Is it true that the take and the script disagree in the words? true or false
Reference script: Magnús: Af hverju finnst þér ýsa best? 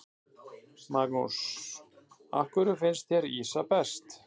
false